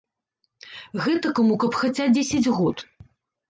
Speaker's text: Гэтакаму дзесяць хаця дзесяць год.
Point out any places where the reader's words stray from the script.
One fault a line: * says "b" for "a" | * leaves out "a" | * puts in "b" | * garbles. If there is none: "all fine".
* says "каб" for "дзесяць"